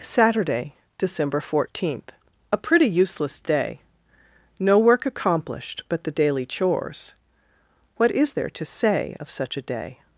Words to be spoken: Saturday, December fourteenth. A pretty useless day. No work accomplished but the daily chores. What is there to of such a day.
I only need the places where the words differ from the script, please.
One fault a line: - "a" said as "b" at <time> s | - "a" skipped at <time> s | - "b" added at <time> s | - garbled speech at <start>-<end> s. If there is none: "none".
- "say" added at 8.6 s